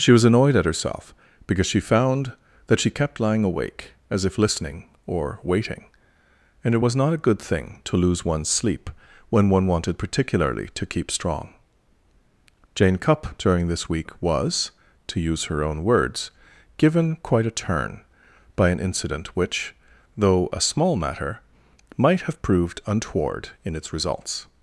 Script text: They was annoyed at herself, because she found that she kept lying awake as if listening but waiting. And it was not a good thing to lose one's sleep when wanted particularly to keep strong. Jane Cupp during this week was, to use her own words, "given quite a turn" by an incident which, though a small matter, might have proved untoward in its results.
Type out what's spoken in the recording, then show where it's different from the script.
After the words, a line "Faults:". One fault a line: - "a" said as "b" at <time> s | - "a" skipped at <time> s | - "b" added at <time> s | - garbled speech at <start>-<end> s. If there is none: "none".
She was annoyed at herself, because she found that she kept lying awake as if listening or waiting. And it was not a good thing to lose one's sleep when one wanted particularly to keep strong. Jane Cupp during this week was, to use her own words, "given quite a turn" by an incident which, though a small matter, might have proved untoward in its results.
Faults:
- "They" said as "She" at 0.0 s
- "but" said as "or" at 5.0 s
- "one" added at 9.5 s